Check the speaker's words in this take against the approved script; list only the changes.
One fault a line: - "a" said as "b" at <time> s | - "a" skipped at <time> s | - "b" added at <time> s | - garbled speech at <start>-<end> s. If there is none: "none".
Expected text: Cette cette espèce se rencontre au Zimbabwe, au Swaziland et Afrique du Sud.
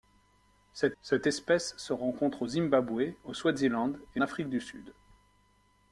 none